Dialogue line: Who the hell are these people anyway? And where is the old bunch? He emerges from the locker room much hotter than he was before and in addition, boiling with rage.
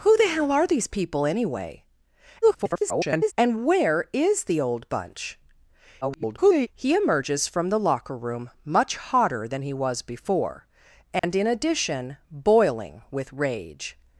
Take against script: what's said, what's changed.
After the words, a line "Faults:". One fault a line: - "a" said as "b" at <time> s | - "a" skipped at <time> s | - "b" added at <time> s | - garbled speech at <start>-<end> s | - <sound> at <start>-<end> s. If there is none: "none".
Who the hell are these people anyway? [garbled] And where is the old bunch? [garbled] He emerges from the locker room much hotter than he was before and in addition, boiling with rage.
Faults:
- garbled speech at 2.4-3.3 s
- garbled speech at 6.0-6.7 s
- dropout at 11.2-11.2 s